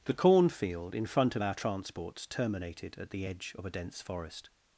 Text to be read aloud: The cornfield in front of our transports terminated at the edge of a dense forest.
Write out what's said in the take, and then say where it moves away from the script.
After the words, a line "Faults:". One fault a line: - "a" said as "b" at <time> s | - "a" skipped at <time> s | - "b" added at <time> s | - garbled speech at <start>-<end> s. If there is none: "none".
The cornfield in front of our transports terminated at the edge of a dense forest.
Faults:
none